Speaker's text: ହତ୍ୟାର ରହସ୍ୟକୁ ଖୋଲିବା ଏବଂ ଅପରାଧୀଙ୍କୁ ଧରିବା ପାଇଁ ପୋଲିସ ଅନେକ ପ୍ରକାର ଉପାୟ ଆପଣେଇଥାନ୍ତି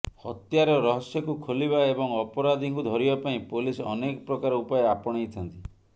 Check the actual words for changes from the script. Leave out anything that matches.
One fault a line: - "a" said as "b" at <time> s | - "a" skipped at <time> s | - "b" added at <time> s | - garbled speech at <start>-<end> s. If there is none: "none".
none